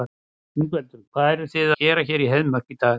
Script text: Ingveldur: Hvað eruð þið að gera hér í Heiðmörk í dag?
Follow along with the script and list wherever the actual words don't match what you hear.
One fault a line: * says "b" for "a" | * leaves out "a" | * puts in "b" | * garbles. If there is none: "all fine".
* leaves out "að"